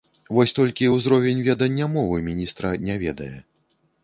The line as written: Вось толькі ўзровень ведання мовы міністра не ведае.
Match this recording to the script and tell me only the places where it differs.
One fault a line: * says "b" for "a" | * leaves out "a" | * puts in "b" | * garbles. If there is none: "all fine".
all fine